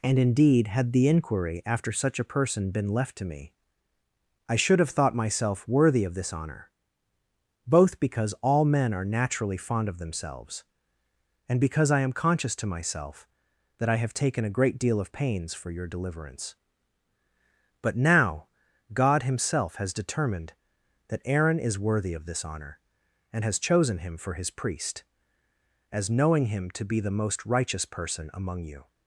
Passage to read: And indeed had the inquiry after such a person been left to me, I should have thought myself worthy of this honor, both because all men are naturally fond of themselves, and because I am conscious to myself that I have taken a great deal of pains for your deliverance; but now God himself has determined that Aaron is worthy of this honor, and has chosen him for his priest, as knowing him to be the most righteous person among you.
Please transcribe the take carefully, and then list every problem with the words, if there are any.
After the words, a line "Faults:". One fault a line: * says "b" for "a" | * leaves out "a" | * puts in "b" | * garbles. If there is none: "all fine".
And indeed had the inquiry after such a person been left to me, I should have thought myself worthy of this honor, both because all men are naturally fond of themselves, and because I am conscious to myself that I have taken a great deal of pains for your deliverance; but now God himself has determined that Aaron is worthy of this honor, and has chosen him for his priest, as knowing him to be the most righteous person among you.
Faults:
all fine